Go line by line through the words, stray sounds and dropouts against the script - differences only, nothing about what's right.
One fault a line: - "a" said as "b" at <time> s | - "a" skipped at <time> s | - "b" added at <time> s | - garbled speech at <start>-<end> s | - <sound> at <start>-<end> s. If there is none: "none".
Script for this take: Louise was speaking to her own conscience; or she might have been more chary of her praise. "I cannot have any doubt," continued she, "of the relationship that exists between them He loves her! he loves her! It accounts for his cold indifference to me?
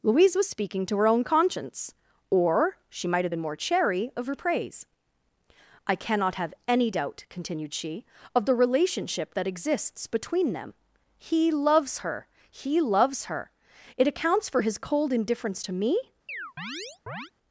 - chirp at 16.3-17.3 s